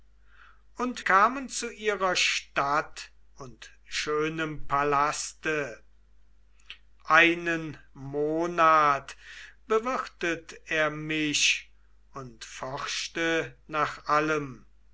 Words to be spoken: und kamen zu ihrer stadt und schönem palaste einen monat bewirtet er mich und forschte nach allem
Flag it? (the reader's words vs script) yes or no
no